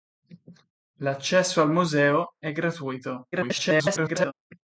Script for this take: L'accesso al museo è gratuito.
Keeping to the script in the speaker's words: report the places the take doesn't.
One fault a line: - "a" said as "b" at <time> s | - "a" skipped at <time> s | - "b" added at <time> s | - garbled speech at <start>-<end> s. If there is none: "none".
- garbled speech at 3.3-4.3 s